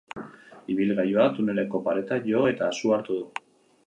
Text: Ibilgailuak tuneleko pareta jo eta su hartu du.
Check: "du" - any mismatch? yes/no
no